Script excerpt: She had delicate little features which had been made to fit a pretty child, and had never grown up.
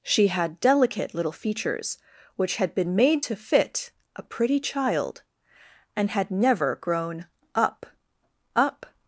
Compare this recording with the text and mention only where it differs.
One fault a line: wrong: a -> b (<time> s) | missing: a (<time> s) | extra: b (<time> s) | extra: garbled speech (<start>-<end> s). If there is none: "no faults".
extra: up (8.5 s)